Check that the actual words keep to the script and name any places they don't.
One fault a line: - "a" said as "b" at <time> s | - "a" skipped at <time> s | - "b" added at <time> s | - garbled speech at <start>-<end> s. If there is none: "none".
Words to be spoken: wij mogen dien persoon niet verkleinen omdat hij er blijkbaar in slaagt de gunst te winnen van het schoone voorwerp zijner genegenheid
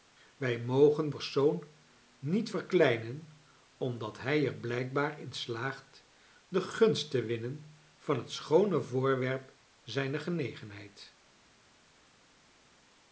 - "dien" skipped at 1.1 s